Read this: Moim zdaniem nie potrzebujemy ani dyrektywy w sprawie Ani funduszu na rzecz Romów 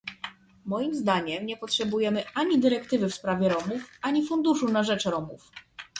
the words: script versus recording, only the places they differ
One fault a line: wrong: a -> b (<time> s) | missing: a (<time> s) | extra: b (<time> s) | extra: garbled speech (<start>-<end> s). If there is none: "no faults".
extra: Romów (3.5 s)